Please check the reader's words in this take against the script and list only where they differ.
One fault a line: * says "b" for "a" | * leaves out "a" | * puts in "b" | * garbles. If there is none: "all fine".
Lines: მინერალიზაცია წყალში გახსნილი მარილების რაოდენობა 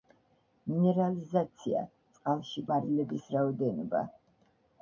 * leaves out "გახსნილი"